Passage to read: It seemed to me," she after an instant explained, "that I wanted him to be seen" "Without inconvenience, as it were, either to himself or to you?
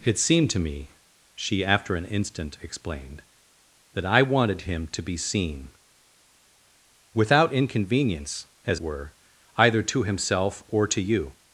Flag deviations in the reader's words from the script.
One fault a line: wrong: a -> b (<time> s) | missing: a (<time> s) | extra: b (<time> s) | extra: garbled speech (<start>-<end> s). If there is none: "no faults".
missing: it (8.8 s)